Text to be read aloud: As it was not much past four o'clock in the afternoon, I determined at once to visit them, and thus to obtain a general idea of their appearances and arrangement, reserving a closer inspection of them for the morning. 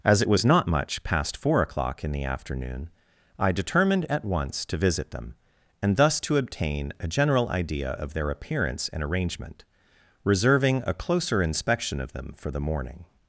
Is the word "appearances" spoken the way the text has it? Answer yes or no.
no